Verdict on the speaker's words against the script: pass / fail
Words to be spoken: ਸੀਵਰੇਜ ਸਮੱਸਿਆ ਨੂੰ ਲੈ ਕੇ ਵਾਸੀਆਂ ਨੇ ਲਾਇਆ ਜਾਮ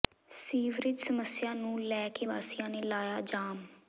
pass